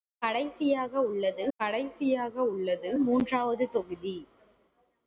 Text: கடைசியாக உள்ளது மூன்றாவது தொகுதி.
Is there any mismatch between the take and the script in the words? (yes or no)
yes